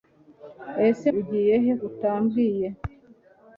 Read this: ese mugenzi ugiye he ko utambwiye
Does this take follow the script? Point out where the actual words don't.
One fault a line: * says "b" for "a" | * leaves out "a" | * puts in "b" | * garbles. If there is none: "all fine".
* leaves out "mugenzi"
* leaves out "ko"